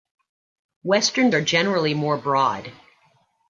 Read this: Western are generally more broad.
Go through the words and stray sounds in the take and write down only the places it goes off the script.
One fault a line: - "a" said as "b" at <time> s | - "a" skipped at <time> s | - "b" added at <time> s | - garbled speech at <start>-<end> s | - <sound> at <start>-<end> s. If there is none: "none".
none